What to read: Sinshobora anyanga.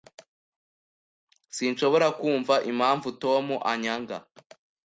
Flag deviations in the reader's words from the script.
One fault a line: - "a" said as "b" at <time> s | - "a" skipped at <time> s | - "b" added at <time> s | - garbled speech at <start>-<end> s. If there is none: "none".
- "kumva impamvu Tom" added at 2.2 s